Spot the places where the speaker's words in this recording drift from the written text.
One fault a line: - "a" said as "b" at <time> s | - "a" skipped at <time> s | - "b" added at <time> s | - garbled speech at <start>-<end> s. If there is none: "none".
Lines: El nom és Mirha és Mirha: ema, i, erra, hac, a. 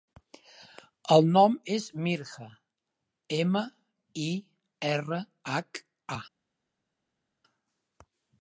- "és Mirha" skipped at 2.5 s